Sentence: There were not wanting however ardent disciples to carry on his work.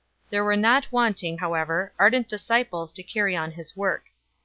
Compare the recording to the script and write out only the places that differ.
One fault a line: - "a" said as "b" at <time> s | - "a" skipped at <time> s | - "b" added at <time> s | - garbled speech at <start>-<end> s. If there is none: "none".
none